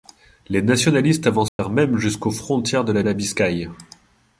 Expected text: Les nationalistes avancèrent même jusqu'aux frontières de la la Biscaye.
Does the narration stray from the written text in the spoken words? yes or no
no